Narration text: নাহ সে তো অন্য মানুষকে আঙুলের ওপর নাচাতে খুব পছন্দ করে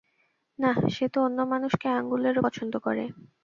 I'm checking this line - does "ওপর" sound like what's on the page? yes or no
no